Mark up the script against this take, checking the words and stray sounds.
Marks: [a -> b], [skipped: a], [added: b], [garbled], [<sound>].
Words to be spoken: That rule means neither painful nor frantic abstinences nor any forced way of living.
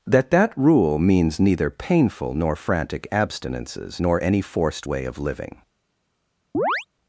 That [added: that] rule means neither painful nor frantic abstinences nor any forced way of living. [chirp]